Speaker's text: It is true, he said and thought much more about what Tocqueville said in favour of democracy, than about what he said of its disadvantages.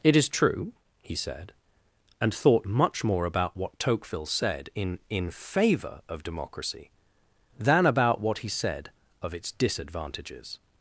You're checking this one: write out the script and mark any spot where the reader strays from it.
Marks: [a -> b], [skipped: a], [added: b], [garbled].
It is true, he said and thought much more about what Tocqueville said in [added: in] favour of democracy, than about what he said of its disadvantages.